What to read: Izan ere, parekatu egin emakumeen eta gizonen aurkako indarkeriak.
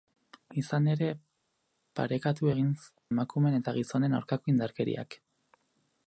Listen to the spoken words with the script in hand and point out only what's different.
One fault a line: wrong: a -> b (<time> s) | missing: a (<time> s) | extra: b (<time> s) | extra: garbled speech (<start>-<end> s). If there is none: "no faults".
no faults